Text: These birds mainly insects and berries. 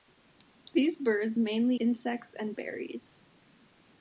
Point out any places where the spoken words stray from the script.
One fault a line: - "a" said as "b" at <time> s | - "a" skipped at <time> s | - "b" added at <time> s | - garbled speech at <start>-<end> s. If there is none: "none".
none